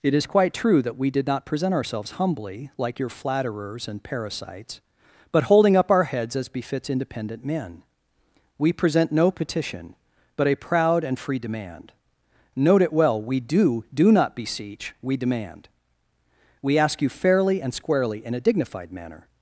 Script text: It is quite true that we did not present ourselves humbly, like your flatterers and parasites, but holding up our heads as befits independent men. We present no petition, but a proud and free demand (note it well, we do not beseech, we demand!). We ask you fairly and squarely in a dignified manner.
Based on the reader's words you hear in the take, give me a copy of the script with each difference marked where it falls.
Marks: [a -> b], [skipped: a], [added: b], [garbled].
It is quite true that we did not present ourselves humbly, like your flatterers and parasites, but holding up our heads as befits independent men. We present no petition, but a proud and free demand (note it well, we do [added: do] not beseech, we demand!). We ask you fairly and squarely in a dignified manner.